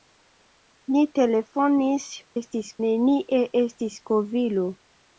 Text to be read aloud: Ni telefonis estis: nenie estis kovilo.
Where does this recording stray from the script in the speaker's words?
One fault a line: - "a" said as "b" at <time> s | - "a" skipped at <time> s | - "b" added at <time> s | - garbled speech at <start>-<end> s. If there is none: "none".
none